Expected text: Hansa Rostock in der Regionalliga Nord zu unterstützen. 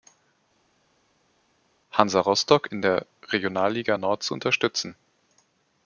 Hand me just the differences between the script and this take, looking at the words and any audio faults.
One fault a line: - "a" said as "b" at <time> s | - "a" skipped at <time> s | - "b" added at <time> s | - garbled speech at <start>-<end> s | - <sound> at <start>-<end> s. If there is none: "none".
none